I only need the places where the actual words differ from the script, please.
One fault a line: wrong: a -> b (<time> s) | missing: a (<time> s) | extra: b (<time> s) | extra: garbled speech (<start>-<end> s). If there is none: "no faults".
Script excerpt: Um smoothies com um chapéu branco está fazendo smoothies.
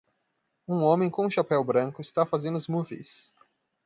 wrong: smoothies -> homem (0.8 s)